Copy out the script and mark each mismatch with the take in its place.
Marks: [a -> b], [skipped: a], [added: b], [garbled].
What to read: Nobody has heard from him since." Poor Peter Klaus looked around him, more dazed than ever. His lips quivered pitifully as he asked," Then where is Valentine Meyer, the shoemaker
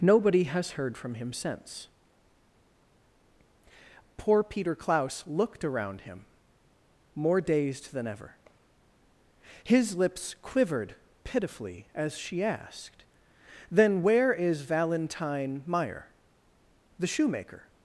Nobody has heard from him since." Poor Peter Klaus looked around him, more dazed than ever. His lips quivered pitifully as [he -> she] asked," Then where is Valentine Meyer, the shoemaker